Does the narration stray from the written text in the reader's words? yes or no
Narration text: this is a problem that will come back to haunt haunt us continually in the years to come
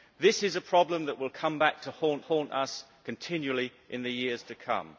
no